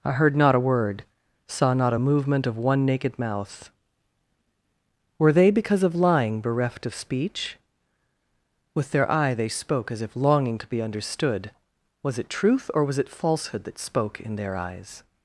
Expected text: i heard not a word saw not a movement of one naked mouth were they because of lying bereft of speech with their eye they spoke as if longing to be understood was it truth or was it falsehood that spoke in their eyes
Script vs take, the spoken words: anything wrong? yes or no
no